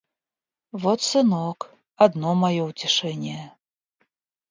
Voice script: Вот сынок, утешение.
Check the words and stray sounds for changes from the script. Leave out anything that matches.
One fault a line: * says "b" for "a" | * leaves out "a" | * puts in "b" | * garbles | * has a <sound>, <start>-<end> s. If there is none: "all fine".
* puts in "одно мое"